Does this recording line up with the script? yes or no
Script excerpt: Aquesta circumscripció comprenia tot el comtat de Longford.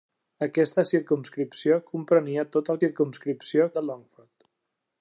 no